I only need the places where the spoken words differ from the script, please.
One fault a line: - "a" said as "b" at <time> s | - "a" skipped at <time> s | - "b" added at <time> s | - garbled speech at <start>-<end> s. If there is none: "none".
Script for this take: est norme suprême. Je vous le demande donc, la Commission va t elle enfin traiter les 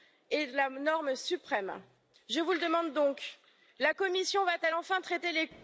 - "la" added at 0.5 s